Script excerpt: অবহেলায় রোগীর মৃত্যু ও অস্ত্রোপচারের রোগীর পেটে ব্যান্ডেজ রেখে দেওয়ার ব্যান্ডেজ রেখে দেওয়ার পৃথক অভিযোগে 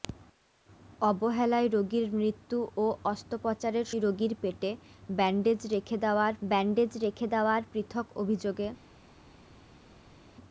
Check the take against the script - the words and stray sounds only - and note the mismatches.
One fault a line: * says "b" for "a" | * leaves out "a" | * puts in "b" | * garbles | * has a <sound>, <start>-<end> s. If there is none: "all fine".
all fine